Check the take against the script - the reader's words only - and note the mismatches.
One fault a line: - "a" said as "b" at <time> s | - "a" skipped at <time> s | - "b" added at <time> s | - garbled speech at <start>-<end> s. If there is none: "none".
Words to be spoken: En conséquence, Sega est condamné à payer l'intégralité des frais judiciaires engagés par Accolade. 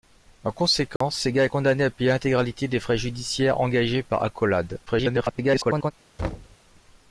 - garbled speech at 4.9-5.9 s